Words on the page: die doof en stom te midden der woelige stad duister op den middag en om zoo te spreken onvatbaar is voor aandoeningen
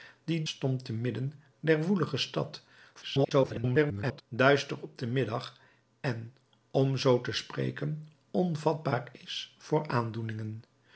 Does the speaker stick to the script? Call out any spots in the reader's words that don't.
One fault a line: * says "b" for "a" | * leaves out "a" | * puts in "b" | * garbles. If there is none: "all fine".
* leaves out "doof en"
* garbles